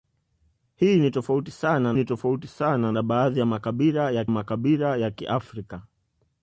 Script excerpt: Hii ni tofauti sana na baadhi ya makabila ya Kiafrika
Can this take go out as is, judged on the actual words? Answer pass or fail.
fail